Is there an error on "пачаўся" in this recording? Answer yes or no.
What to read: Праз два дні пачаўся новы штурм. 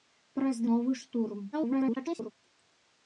yes